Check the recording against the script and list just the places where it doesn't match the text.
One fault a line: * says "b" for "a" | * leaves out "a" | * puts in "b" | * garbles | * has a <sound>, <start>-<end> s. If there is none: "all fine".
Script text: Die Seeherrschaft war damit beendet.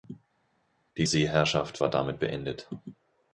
all fine